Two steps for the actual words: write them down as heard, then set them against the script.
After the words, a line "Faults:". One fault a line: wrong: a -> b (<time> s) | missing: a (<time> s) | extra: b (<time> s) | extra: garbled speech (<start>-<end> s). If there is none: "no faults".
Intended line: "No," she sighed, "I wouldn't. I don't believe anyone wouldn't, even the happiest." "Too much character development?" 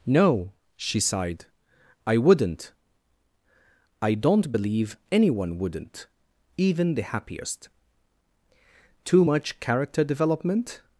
"No," she sighed, "I wouldn't. I don't believe anyone wouldn't, even the happiest." "Too much character development?"
Faults:
no faults